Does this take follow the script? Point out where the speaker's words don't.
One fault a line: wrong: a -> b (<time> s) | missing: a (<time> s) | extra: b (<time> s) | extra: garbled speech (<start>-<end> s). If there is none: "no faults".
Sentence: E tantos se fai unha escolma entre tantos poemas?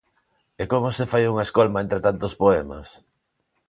wrong: tantos -> como (0.7 s)